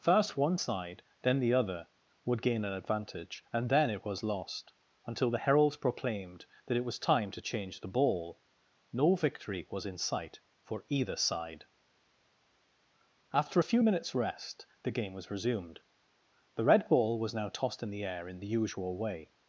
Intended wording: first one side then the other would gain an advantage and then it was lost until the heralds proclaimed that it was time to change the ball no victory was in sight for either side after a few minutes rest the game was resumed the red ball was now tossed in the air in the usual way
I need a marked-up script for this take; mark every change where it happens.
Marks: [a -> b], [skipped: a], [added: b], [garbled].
first one side then the other would gain an advantage and then it was lost until the heralds proclaimed that it was time to change the ball no victory was in sight for either side after a few minutes rest the game was resumed the red ball was now tossed in the air in the usual way